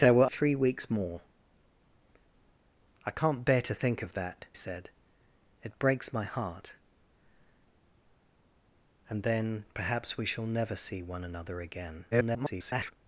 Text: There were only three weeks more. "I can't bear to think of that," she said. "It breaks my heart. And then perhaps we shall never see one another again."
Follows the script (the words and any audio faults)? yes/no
no